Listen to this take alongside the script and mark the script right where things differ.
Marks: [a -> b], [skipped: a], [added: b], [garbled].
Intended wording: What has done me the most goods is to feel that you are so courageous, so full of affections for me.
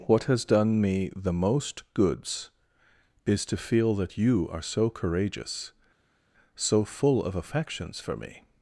What has done me the most goods is to feel that you are so courageous, so full of affections for me.